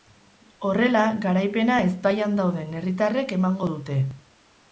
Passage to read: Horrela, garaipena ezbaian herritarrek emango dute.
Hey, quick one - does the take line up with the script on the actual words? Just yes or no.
no